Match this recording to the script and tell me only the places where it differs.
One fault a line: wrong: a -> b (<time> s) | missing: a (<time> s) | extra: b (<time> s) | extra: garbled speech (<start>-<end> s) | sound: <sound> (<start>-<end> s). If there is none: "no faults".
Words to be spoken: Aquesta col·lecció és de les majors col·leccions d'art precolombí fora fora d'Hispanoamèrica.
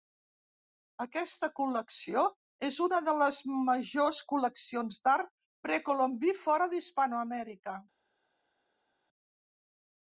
extra: una (2.9 s)
missing: fora (6.7 s)